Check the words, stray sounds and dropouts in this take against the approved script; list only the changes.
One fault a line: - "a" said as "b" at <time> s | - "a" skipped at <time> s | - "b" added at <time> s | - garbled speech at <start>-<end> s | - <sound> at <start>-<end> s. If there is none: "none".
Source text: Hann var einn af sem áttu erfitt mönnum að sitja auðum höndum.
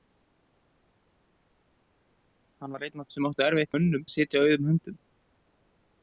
none